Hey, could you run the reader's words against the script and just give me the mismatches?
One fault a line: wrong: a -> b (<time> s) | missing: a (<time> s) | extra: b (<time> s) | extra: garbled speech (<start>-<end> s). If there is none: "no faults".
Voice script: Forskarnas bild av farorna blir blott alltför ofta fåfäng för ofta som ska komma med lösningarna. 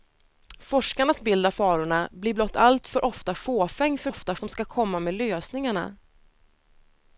no faults